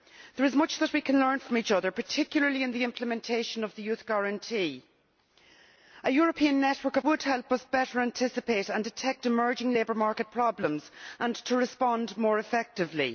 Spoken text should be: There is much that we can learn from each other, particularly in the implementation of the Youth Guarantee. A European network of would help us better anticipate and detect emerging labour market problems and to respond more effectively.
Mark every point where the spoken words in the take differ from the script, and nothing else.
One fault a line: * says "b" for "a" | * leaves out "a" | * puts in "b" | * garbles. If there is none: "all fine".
all fine